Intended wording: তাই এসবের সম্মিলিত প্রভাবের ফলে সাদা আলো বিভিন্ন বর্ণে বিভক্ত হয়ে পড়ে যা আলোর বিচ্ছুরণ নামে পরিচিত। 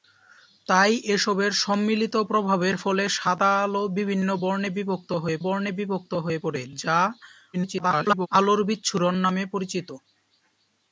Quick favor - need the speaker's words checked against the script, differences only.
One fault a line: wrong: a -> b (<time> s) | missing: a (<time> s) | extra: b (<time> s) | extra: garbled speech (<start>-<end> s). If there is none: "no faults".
extra: বর্ণে বিভক্ত হয়ে (5.4 s)
extra: garbled speech (7.5-8.3 s)